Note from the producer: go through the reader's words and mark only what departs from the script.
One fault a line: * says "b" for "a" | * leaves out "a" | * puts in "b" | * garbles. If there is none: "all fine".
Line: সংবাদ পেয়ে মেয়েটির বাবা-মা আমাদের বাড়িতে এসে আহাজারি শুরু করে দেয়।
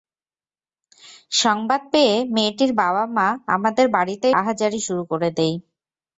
* leaves out "এসে"